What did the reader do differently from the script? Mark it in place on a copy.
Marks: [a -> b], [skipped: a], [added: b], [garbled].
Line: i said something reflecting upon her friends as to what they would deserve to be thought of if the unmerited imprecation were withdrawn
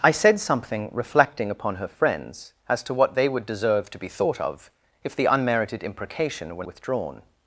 i said something reflecting upon her friends as to what they would deserve to be thought of if the unmerited imprecation were withdrawn